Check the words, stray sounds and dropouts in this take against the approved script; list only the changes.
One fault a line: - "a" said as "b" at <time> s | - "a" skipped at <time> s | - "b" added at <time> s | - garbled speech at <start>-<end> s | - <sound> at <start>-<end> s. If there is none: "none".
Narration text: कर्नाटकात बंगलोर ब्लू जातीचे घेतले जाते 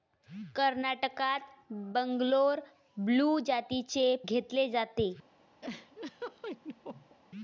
- laugh at 5.6-7.2 s